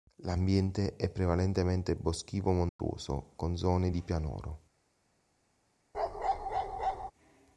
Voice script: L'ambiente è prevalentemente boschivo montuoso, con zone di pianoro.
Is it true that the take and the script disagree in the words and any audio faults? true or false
true